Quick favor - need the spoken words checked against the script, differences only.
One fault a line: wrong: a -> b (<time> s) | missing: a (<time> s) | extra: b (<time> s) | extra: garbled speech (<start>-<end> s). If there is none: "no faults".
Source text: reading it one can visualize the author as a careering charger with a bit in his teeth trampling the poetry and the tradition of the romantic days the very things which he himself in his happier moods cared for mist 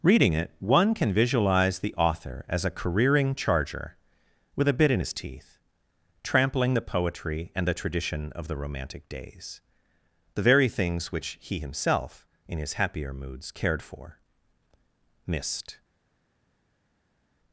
no faults